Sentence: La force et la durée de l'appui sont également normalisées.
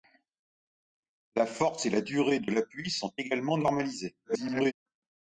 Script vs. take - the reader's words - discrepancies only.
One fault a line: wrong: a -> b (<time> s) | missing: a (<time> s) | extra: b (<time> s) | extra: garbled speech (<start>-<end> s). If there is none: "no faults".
extra: garbled speech (4.2-4.7 s)